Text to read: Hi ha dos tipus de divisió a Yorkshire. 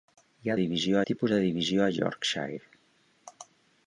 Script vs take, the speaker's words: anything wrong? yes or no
yes